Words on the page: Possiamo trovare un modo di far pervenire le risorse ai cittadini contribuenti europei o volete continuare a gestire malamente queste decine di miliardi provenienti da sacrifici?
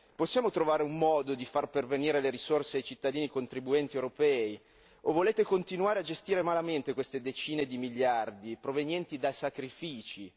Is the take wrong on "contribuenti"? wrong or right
right